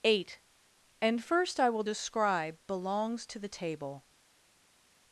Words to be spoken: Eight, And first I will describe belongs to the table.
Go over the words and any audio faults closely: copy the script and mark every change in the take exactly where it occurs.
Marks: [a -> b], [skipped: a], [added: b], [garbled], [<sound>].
Eight, And first I will describe belongs to the table.